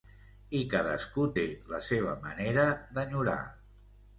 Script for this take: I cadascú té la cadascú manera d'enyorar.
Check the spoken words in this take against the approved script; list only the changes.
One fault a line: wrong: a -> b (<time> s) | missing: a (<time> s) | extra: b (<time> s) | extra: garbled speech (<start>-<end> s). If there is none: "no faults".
wrong: cadascú -> seva (1.9 s)